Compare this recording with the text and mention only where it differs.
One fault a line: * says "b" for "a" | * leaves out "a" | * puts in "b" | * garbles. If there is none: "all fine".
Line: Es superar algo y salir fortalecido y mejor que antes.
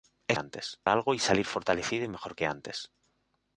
* says "antes" for "superar"